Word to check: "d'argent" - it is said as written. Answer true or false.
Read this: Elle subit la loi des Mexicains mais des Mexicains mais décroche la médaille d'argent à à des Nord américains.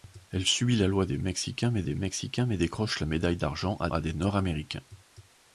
true